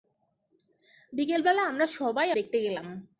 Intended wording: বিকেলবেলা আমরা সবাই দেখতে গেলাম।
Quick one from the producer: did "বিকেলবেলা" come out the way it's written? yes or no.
yes